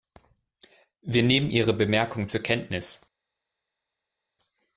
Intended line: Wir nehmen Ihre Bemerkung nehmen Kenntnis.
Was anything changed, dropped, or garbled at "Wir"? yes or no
no